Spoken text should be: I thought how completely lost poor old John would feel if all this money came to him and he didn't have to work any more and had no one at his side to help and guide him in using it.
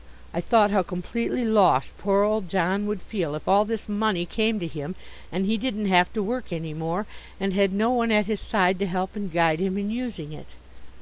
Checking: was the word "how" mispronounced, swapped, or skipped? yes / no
no